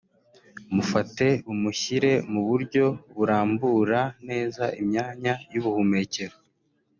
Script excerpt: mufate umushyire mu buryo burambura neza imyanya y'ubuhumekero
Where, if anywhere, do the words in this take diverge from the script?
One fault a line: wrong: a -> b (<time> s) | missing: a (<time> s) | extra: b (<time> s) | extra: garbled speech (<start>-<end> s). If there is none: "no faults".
no faults